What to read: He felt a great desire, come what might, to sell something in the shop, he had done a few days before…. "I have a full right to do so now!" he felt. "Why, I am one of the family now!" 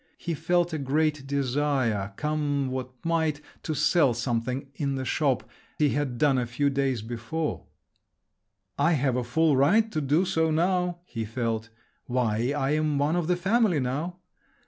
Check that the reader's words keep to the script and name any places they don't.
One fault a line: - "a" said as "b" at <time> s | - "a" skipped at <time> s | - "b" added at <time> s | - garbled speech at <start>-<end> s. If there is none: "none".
none